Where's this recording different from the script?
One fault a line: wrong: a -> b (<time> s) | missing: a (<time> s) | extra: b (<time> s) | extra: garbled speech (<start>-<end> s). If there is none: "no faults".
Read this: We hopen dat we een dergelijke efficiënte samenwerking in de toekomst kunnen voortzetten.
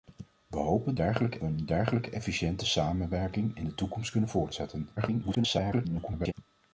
wrong: dat -> dergelijke (0.9 s)
extra: garbled speech (5.0-6.3 s)